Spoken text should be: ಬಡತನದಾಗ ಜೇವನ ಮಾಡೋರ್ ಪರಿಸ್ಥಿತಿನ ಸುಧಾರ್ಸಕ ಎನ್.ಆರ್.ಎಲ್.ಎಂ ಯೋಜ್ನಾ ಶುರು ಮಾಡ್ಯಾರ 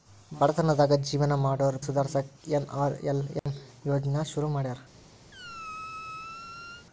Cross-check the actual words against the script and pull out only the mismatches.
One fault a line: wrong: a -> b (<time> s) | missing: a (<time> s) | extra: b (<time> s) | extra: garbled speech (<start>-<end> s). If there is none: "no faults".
missing: ಪರಿಸ್ಥಿತಿನ (1.8 s)